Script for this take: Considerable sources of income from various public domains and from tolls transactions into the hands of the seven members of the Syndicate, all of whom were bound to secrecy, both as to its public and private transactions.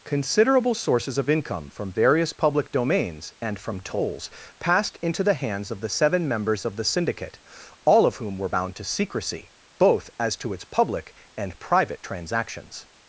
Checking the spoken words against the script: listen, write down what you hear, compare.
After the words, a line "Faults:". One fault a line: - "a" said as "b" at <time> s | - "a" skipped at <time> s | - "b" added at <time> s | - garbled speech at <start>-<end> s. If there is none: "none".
Considerable sources of income from various public domains and from tolls passed into the hands of the seven members of the Syndicate, all of whom were bound to secrecy, both as to its public and private transactions.
Faults:
- "transactions" said as "passed" at 4.6 s